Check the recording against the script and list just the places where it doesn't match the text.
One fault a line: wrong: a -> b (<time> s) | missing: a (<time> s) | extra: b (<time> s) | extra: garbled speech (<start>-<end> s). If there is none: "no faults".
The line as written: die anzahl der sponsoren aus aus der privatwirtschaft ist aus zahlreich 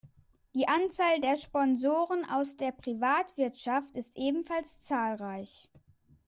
missing: aus (2.6 s)
wrong: aus -> ebenfalls (4.2 s)